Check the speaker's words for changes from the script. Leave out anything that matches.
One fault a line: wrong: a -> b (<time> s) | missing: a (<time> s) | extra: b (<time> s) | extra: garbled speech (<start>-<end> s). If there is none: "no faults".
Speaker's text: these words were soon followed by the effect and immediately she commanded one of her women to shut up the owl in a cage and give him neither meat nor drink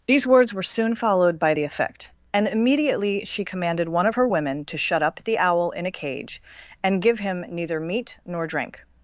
no faults